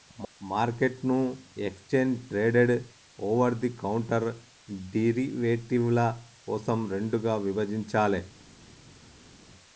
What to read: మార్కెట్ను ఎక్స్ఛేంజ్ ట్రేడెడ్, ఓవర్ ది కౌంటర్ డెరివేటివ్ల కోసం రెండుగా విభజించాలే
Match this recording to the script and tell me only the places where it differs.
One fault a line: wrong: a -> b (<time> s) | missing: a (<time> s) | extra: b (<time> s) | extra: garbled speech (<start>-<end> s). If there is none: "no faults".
no faults